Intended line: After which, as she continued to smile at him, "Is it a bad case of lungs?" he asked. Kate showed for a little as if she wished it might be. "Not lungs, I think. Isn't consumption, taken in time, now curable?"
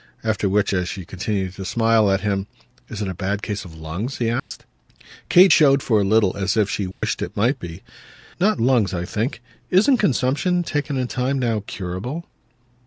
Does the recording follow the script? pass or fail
pass